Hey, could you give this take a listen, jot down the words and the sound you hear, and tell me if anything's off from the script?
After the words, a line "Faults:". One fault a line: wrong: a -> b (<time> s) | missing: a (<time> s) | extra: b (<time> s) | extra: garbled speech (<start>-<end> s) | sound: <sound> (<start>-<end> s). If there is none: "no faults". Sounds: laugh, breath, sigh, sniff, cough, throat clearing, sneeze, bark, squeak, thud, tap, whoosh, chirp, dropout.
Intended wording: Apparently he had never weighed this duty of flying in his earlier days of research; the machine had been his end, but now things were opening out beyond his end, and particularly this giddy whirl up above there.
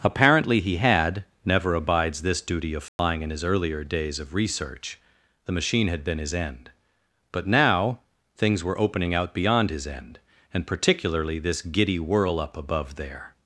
Apparently he had never abides this duty of flying in his earlier days of research; the machine had been his end, but now things were opening out beyond his end, and particularly this giddy whirl up above there.
Faults:
wrong: weighed -> abides (1.8 s)
sound: dropout (2.9-3.0 s)